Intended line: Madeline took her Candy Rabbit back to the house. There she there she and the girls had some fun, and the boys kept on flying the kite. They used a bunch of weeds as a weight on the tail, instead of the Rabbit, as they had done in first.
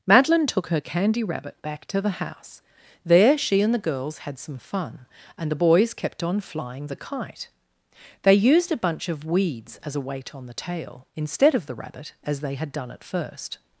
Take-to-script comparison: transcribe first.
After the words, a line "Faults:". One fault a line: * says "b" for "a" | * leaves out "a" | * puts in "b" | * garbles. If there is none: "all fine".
Madeline took her Candy Rabbit back to the house. There she and the girls had some fun, and the boys kept on flying the kite. They used a bunch of weeds as a weight on the tail, instead of the Rabbit, as they had done at first.
Faults:
* leaves out "there she"
* says "at" for "in"